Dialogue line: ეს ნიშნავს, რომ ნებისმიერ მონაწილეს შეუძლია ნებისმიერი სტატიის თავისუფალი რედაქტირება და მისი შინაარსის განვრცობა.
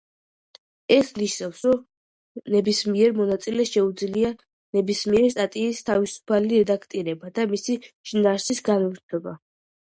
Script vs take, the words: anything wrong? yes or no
no